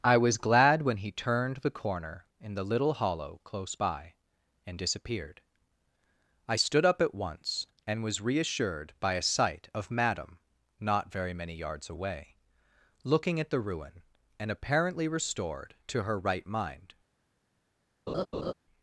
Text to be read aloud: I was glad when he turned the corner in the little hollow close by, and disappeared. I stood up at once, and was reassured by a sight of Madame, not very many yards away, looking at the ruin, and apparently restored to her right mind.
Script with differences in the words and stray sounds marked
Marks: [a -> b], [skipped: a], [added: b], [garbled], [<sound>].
I was glad when he turned the corner in the little hollow close by, and disappeared. I stood up at once, and was reassured by a sight of Madame, not very many yards away, looking at the ruin, and apparently restored to her right mind. [laugh]